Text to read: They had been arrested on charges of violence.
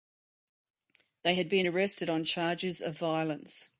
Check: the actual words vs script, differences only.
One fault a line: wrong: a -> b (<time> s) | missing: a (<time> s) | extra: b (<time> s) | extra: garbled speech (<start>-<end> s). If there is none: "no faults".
no faults